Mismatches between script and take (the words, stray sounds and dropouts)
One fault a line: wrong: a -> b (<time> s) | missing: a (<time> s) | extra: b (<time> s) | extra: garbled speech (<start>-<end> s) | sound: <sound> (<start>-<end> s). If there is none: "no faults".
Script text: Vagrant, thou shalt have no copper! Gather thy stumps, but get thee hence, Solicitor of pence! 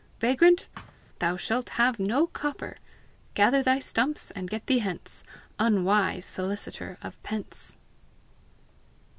sound: thud (0.7-1.0 s)
wrong: but -> and (4.3 s)
extra: Unwise (5.6 s)